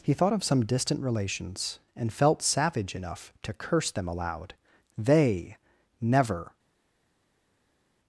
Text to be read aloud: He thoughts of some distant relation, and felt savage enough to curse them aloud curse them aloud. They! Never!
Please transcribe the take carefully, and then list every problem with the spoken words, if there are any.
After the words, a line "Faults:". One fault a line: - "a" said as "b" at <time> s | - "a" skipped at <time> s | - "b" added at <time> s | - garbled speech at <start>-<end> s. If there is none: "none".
He thought of some distant relations, and felt savage enough to curse them aloud. They! Never!
Faults:
- "thoughts" said as "thought" at 0.1 s
- "relation" said as "relations" at 1.0 s
- "curse them aloud" skipped at 4.5 s